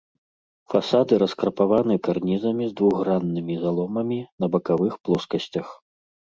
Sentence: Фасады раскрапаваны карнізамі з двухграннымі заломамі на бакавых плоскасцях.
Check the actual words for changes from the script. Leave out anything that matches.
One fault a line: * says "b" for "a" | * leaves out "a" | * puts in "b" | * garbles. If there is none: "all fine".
all fine